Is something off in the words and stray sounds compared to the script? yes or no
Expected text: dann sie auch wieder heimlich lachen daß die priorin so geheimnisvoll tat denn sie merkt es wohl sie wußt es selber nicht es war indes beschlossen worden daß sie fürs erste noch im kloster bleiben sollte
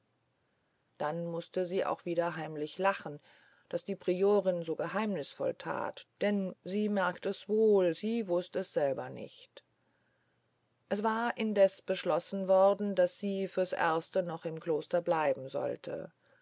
yes